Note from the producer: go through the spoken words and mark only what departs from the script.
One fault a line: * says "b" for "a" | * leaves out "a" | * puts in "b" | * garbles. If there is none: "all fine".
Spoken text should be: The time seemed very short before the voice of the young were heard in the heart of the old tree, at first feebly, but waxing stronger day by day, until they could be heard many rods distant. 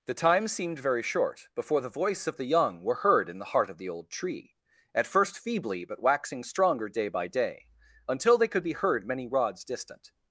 all fine